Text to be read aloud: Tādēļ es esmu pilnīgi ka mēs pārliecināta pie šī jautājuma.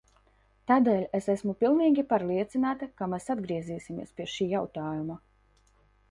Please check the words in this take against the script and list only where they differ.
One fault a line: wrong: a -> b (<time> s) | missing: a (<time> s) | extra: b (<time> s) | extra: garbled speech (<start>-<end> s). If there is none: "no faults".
extra: pārliecināta (2.1 s)
wrong: pārliecināta -> atgriezīsimies (3.3 s)